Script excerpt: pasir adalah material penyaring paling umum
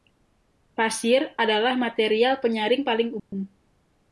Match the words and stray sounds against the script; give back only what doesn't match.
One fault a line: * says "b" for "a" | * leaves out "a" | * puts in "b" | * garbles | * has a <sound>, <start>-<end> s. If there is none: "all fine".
* has a dropout, 3.2-3.3 s